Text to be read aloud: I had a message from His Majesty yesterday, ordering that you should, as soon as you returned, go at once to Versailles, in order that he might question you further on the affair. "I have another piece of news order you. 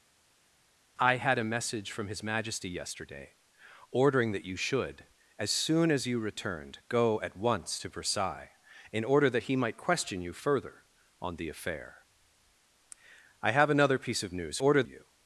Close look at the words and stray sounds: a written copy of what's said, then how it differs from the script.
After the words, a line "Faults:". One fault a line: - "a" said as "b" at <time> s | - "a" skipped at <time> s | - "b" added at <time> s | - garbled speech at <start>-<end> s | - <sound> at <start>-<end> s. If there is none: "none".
I had a message from His Majesty yesterday, ordering that you should, as soon as you returned, go at once to Versailles, in order that he might question you further on the affair. "I have another piece of news order you.
Faults:
none